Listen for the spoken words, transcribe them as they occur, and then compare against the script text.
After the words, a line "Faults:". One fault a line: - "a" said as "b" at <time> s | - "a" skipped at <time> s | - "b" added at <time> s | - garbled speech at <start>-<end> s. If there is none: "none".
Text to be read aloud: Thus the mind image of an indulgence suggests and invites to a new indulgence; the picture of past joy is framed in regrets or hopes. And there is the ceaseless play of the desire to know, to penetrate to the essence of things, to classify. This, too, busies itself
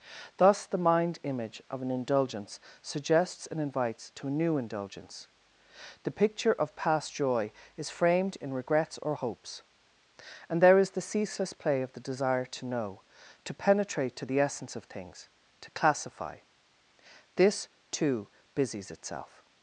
Thus the mind image of an indulgence suggests and invites to a new indulgence; the picture of past joy is framed in regrets or hopes. And there is the ceaseless play of the desire to know, to penetrate to the essence of things, to classify. This, too, busies itself
Faults:
none